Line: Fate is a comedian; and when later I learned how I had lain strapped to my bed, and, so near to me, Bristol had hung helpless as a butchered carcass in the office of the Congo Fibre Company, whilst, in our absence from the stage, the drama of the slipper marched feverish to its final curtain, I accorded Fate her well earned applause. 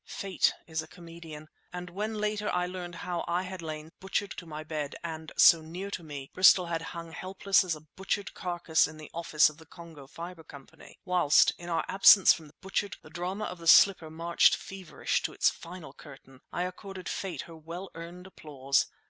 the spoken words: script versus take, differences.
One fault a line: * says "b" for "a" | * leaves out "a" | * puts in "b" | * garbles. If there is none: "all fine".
* says "butchered" for "strapped"
* says "butchered" for "stage"